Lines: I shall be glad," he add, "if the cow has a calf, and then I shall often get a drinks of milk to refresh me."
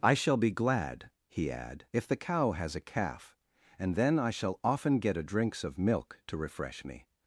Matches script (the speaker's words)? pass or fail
pass